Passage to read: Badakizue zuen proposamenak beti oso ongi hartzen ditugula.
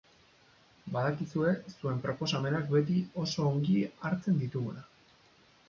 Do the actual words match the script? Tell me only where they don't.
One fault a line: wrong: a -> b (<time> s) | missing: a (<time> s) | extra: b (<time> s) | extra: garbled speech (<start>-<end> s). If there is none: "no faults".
no faults